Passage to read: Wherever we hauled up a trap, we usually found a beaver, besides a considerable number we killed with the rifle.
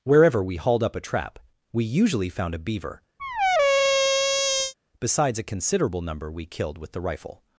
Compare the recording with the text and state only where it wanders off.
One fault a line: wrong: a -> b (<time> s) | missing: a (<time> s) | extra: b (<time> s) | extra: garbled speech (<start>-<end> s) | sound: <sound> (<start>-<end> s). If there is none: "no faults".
sound: squeak (3.2-4.7 s)